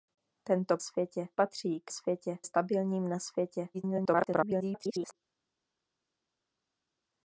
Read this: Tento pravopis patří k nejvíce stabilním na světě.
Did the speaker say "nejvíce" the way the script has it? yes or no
no